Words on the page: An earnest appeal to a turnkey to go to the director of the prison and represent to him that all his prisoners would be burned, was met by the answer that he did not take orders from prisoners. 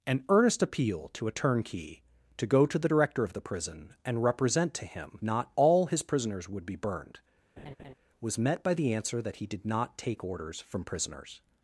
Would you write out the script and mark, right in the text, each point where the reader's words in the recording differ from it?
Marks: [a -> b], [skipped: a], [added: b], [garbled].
An earnest appeal to a turnkey to go to the director of the prison and represent to him [that -> not] all his prisoners would be burned, was met by the answer that he did not take orders from prisoners.